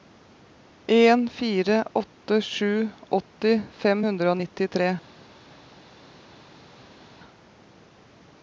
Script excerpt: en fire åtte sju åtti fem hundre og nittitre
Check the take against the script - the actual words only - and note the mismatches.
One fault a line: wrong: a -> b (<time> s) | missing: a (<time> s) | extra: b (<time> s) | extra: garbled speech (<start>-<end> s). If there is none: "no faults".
no faults